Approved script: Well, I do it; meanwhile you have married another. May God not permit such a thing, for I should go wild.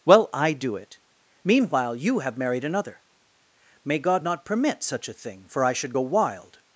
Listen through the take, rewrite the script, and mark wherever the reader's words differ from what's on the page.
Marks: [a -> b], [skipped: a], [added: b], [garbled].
Well, I do it; meanwhile you have married another. May God not permit such a thing, for I should go wild.